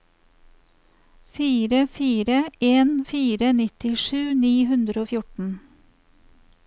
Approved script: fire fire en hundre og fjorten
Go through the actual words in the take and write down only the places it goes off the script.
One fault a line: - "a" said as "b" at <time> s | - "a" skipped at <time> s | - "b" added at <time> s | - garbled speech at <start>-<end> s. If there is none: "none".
- "fire nittisju ni" added at 3.1 s